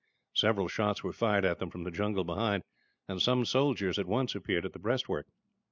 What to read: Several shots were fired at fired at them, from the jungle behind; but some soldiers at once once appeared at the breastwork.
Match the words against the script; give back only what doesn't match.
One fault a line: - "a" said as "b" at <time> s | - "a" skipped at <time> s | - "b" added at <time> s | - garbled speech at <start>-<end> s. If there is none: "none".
- "fired at" skipped at 1.6 s
- "but" said as "and" at 3.1 s
- "once" skipped at 4.3 s